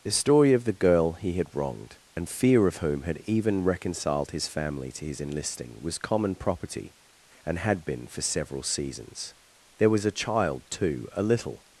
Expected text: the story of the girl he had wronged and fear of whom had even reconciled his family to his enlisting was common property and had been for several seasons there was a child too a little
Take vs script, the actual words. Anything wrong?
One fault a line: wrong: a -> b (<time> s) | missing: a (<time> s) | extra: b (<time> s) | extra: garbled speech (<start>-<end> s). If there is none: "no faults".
no faults